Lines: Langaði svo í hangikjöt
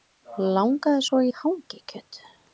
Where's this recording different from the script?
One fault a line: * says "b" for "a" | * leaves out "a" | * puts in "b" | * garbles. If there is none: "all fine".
all fine